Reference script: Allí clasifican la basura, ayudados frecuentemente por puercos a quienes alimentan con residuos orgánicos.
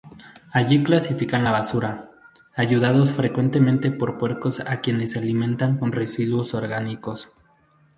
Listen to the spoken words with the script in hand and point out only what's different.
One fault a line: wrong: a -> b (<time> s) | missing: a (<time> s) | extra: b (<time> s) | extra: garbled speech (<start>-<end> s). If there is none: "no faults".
no faults